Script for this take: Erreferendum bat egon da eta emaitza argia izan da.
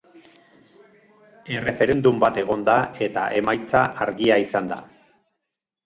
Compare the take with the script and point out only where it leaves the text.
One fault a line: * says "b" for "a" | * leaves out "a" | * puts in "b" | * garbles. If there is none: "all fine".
all fine